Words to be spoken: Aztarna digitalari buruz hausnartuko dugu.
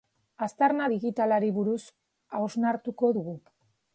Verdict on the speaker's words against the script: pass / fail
pass